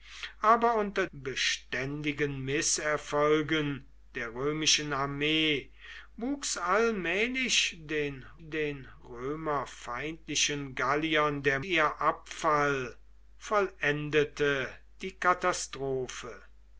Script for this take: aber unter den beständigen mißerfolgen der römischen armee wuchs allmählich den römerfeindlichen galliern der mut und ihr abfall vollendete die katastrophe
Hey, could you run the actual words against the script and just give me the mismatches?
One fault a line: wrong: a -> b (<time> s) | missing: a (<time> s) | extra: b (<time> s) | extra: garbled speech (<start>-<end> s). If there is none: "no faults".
missing: den (1.1 s)
extra: den (8.4 s)
missing: mut und (11.6 s)